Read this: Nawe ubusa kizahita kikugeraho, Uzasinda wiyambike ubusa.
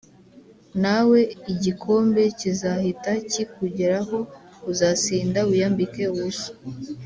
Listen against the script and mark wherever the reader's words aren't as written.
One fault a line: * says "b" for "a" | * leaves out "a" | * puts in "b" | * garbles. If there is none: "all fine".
* says "igikombe" for "ubusa"